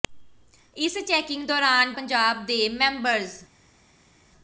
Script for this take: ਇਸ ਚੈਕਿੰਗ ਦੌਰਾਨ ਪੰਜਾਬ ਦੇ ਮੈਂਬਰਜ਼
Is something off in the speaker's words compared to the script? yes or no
no